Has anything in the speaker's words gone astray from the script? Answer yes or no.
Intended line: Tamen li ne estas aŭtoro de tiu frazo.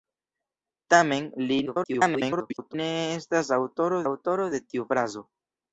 yes